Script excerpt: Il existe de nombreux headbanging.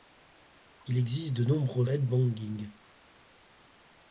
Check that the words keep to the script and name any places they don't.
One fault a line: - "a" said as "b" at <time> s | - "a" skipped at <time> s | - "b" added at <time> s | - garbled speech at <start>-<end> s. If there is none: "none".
none